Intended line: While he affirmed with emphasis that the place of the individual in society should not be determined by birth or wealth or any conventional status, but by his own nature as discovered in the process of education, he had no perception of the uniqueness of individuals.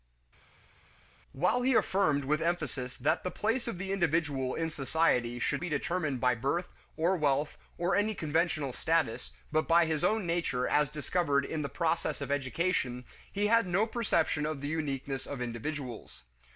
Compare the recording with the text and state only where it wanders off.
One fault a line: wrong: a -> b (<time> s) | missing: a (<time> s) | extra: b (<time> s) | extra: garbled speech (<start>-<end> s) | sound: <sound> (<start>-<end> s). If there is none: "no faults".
missing: not (5.6 s)